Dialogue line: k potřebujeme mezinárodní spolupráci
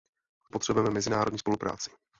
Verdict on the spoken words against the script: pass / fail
pass